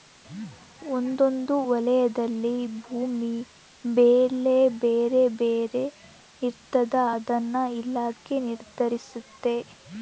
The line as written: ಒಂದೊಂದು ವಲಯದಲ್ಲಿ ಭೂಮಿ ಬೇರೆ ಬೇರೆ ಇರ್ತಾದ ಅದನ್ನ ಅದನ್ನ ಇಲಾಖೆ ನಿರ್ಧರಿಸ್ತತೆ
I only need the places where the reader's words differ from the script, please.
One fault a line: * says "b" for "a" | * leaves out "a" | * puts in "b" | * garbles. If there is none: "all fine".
* puts in "ಬೆಲೆ"
* leaves out "ಅದನ್ನ"